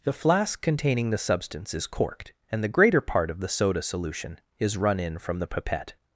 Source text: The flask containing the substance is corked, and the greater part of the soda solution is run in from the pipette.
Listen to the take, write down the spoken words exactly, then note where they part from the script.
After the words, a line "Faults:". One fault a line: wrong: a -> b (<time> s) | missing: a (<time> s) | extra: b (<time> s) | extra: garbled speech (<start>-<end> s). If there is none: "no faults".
The flask containing the substance is corked, and the greater part of the soda solution is run in from the pipette.
Faults:
no faults